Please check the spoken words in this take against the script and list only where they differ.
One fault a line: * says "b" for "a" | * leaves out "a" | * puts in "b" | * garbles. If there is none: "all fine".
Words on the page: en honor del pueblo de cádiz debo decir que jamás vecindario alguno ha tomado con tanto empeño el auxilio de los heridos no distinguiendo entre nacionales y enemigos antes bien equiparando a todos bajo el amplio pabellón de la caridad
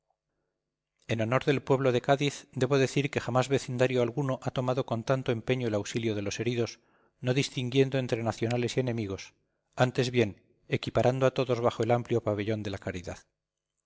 all fine